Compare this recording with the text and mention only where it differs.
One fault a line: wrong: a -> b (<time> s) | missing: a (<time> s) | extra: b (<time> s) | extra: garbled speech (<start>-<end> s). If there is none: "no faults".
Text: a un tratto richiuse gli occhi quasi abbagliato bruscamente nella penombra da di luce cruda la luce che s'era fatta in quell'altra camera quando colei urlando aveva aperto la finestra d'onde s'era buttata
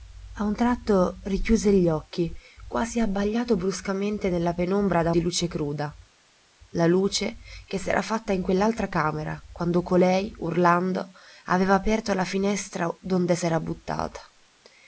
no faults